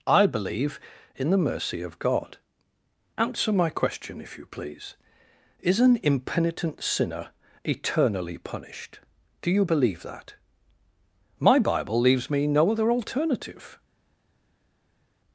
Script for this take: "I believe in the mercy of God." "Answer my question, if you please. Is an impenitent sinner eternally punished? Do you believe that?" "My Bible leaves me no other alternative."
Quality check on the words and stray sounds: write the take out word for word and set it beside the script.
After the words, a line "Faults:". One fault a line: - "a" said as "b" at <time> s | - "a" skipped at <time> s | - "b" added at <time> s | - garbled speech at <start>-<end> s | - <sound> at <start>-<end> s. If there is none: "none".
"I believe in the mercy of God." "Answer my question, if you please. Is an impenitent sinner eternally punished? Do you believe that?" "My Bible leaves me no other alternative."
Faults:
none